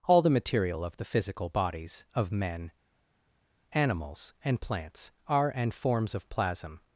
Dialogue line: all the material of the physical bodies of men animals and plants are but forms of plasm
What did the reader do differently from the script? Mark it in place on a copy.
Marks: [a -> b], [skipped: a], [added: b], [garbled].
all the material of the physical bodies of men animals and plants are [but -> and] forms of plasm